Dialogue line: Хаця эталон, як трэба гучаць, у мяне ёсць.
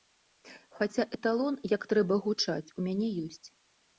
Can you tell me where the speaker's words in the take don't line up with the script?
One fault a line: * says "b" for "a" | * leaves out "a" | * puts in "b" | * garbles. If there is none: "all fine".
all fine